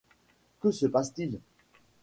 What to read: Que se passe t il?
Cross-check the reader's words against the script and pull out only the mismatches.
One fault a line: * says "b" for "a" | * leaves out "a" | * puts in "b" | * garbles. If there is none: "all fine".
all fine